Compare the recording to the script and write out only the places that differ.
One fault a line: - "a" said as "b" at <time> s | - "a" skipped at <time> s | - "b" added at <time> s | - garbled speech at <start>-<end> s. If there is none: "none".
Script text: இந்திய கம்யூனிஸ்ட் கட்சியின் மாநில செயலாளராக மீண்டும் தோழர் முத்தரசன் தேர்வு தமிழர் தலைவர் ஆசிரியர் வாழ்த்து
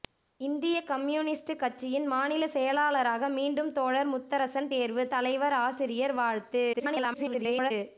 - "தமிழர்" skipped at 5.0 s
- garbled speech at 6.7-7.7 s